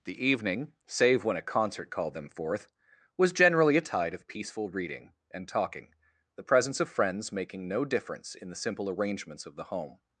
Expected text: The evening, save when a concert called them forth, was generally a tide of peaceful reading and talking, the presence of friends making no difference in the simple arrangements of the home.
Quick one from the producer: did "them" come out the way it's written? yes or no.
yes